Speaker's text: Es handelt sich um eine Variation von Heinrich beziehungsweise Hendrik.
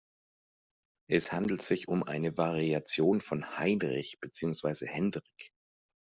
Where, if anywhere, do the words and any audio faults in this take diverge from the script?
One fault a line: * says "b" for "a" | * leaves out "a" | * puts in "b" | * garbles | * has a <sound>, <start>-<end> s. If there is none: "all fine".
all fine